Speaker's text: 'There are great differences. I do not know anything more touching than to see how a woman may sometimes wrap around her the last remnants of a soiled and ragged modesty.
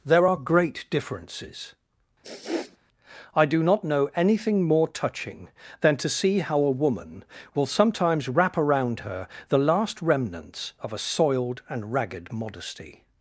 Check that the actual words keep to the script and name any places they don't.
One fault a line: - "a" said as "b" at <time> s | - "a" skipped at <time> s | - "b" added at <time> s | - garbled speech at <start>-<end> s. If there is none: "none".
- "may" said as "will" at 7.5 s